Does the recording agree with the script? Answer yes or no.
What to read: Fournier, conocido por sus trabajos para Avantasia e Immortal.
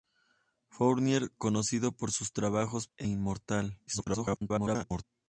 no